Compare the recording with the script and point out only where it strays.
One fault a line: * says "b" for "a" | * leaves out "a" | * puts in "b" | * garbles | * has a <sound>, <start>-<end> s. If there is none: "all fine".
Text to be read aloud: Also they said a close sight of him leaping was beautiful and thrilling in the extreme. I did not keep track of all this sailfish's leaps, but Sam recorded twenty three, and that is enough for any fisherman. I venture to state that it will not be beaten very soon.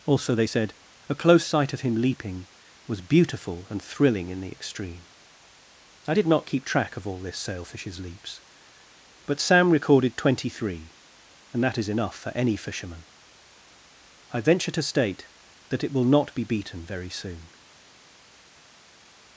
all fine